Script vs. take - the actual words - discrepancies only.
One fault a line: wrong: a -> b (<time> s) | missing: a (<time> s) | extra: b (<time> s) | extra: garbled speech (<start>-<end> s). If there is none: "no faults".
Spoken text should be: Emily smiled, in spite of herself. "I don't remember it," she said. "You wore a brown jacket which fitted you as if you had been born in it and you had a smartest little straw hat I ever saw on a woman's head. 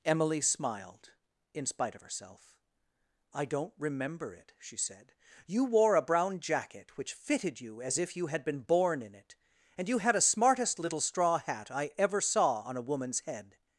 no faults